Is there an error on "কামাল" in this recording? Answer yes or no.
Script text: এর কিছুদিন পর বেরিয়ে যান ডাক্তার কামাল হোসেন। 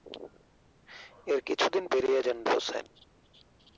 yes